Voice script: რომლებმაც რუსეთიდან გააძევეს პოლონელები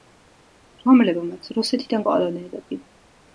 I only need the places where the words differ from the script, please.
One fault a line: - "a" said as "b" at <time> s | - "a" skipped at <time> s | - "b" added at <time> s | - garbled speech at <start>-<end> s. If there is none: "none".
- "გააძევეს" skipped at 2.0 s